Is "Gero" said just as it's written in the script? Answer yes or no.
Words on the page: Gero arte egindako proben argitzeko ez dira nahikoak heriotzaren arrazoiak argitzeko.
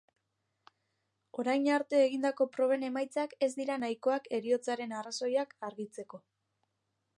no